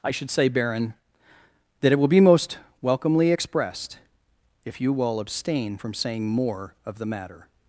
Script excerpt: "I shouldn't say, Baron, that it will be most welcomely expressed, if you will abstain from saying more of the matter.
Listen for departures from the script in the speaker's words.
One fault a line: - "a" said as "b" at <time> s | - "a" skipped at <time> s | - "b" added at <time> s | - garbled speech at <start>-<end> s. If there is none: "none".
- "shouldn't" said as "should" at 0.1 s